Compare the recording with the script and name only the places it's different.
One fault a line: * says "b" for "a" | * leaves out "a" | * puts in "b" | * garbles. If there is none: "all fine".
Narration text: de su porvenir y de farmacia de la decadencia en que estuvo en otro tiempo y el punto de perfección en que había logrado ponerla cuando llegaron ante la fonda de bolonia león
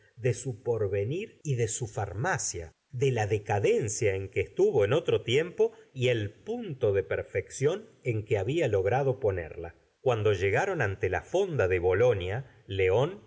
* puts in "su"